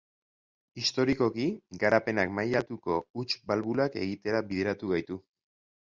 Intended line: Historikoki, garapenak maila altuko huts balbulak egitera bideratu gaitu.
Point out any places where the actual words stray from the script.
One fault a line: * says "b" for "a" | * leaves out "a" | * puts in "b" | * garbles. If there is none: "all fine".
all fine